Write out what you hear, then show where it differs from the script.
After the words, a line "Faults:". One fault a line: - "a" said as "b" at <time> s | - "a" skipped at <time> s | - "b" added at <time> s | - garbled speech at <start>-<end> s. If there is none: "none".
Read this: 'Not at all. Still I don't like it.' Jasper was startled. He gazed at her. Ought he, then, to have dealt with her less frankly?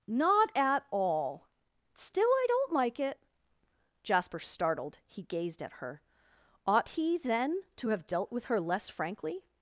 'Not at all. Still I don't like it.' Jasper startled. He gazed at her. Ought he, then, to have dealt with her less frankly?
Faults:
- "was" skipped at 4.4 s